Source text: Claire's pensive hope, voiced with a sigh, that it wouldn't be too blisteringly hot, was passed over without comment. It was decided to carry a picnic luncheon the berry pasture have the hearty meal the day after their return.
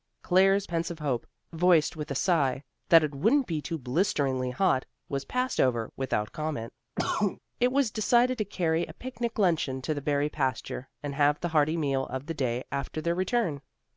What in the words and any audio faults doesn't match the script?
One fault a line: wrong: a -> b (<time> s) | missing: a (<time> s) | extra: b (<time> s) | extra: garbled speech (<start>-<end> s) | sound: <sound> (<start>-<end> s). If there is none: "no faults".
sound: cough (7.0-7.4 s)
extra: to (9.8 s)
extra: and (11.0 s)
extra: of (12.1 s)